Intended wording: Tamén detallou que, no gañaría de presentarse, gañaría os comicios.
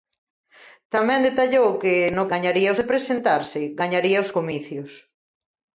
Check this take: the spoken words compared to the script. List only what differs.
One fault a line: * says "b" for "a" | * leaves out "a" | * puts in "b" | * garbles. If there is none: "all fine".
all fine